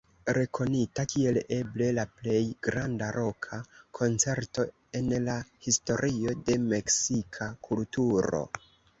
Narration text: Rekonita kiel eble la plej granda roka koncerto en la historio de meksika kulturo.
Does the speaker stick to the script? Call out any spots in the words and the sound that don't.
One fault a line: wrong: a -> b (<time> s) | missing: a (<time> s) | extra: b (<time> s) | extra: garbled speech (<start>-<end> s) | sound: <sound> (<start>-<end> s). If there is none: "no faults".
no faults